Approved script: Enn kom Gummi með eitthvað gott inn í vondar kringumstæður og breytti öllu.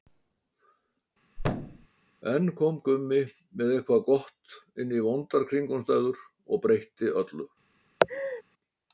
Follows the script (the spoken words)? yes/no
yes